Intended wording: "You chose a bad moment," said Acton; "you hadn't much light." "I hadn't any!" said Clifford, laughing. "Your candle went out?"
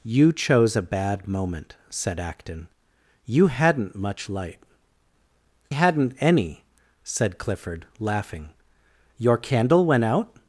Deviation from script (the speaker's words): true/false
true